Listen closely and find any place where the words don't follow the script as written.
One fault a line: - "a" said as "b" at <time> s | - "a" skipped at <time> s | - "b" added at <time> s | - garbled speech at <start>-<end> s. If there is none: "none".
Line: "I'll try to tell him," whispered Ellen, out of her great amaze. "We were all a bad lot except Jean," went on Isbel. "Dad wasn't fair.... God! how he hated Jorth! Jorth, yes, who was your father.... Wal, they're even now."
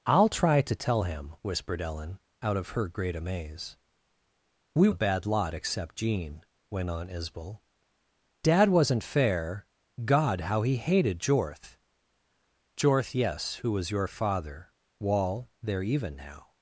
- "were all" skipped at 4.9 s